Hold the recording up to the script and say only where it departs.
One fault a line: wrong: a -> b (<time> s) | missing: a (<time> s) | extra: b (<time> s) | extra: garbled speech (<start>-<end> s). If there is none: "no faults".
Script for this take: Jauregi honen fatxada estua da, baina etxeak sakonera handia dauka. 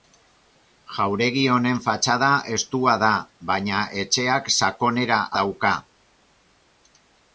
missing: handia (5.2 s)